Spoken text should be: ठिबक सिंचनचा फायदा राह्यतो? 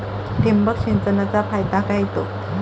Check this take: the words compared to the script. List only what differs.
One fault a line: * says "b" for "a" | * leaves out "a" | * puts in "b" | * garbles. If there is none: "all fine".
all fine